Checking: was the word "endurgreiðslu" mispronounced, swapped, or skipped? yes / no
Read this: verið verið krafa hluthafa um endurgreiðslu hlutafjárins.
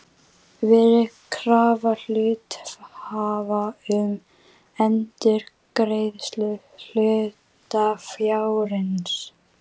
no